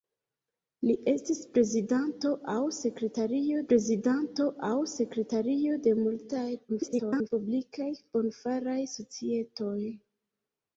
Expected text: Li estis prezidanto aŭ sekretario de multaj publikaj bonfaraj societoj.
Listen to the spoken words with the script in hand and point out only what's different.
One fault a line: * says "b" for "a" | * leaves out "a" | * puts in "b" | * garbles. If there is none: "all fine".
* puts in "prezidanto aŭ sekretario"
* garbles